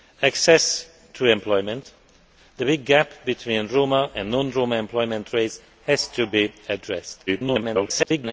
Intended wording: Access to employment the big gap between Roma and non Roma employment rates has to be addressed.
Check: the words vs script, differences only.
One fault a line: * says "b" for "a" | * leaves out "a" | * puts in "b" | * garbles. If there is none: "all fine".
* garbles